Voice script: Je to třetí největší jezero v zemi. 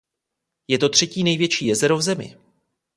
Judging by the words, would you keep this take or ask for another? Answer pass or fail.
pass